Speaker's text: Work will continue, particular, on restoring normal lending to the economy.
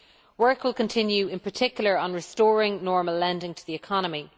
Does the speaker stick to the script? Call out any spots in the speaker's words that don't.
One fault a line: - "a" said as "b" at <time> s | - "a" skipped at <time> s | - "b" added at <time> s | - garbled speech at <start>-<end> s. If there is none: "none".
- "in" added at 1.3 s